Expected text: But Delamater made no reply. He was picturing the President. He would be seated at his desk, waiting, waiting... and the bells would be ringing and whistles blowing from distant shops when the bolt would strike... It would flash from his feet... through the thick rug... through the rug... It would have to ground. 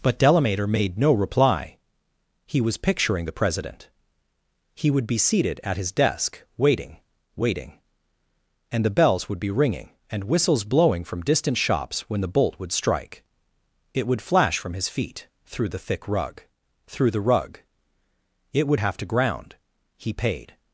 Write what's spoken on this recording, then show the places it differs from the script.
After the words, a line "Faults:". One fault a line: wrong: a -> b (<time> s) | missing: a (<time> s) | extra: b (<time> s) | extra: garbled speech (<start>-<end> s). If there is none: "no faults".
But Delamater made no reply. He was picturing the President. He would be seated at his desk, waiting, waiting... and the bells would be ringing and whistles blowing from distant shops when the bolt would strike... It would flash from his feet... through the thick rug... through the rug... It would have to ground. He paid
Faults:
extra: He paid (20.0 s)